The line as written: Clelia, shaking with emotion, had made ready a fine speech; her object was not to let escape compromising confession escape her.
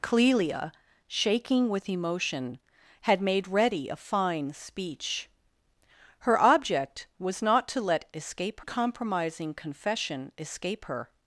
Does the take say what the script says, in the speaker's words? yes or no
yes